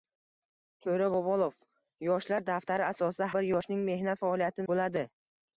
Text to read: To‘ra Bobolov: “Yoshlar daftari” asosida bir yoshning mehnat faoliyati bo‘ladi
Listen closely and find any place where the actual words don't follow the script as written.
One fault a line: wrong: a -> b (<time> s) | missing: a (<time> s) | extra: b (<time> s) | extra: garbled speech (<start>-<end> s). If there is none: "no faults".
no faults